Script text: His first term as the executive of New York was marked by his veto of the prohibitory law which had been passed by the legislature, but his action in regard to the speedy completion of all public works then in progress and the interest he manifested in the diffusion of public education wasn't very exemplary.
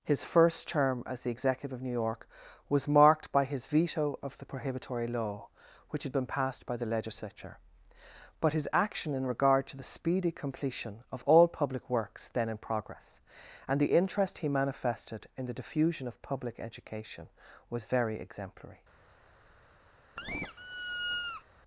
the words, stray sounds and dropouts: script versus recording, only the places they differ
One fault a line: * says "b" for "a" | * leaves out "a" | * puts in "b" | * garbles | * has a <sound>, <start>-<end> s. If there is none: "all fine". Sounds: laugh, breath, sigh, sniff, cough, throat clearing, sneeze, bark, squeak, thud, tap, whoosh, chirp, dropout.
* says "was" for "wasn't"
* has a squeak, 20.2-21.4 s